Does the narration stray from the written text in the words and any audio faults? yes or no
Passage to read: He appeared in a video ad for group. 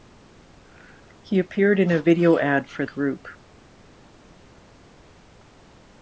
no